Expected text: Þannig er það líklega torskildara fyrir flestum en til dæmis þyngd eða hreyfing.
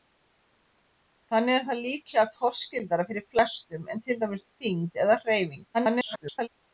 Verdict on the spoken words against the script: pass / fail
fail